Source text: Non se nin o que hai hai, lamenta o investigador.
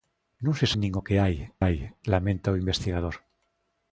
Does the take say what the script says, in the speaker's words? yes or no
yes